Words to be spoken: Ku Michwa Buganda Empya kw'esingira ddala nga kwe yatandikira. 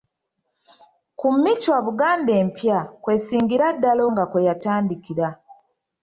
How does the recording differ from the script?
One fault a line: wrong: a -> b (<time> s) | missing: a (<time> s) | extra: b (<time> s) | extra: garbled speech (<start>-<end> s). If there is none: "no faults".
no faults